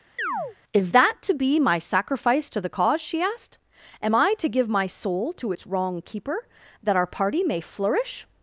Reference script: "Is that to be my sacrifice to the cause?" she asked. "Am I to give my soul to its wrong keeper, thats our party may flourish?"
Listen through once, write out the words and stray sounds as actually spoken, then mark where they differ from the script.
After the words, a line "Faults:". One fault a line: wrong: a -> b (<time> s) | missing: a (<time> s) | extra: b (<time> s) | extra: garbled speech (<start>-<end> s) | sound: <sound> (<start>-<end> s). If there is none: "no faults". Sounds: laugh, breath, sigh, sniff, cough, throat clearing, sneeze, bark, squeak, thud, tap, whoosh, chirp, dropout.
"Is that to be my sacrifice to the cause?" she asked. "Am I to give my soul to its wrong keeper, that our party may flourish?"
Faults:
sound: chirp (0.2-0.6 s)
wrong: thats -> that (6.8 s)